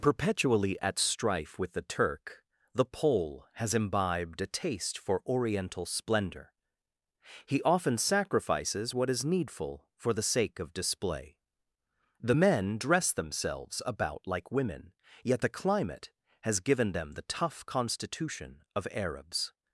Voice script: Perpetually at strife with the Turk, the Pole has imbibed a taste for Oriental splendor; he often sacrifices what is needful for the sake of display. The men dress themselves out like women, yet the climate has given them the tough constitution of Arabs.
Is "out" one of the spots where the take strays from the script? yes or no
yes